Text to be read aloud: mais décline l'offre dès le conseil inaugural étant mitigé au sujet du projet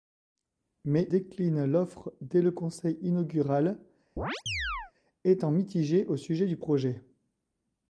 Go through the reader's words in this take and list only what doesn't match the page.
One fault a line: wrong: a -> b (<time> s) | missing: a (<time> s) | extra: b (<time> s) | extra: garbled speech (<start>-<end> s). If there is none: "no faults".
no faults